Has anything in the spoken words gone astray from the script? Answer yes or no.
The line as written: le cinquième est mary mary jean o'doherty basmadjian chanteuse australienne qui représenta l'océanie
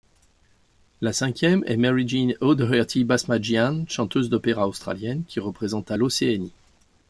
yes